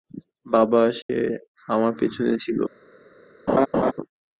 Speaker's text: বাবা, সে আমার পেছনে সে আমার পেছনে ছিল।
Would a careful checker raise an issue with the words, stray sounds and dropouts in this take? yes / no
yes